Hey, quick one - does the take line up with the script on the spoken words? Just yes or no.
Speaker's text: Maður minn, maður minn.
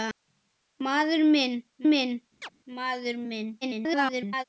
no